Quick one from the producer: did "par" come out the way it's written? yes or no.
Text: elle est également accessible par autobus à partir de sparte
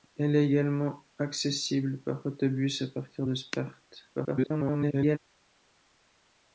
yes